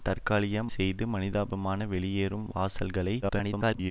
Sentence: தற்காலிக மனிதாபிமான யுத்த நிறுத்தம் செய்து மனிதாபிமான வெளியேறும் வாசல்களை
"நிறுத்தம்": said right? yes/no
no